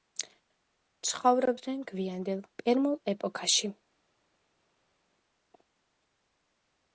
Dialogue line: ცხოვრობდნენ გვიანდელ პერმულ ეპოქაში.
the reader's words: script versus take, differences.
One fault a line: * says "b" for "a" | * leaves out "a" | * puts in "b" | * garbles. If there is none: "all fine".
all fine